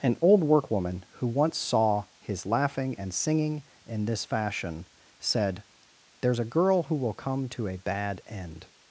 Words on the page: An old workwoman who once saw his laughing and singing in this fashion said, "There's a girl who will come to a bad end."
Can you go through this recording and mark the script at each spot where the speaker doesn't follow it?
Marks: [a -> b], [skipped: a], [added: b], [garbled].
An old workwoman who once saw his laughing and singing in this fashion said, "There's a girl who will come to a bad end."